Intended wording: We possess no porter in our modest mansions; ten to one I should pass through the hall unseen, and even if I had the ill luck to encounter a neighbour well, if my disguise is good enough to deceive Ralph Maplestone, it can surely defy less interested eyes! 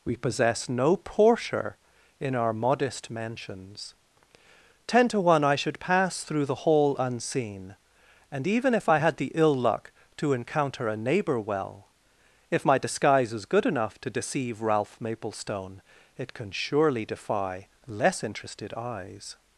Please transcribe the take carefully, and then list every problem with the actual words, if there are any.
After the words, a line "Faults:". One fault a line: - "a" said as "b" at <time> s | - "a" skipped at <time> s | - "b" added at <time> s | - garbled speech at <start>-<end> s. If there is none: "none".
We possess no porter in our modest mansions; ten to one I should pass through the hall unseen, and even if I had the ill luck to encounter a neighbour well, if my disguise is good enough to deceive Ralph Maplestone, it can surely defy less interested eyes!
Faults:
none